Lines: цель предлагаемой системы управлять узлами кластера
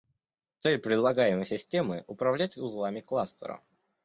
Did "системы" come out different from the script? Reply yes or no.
no